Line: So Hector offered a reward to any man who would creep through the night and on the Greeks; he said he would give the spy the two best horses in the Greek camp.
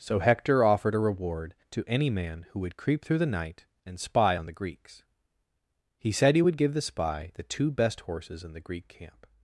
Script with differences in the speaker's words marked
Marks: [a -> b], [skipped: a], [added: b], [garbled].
So Hector offered a reward to any man who would creep through the night and [added: spy] on the Greeks; he said he would give the spy the two best horses in the Greek camp.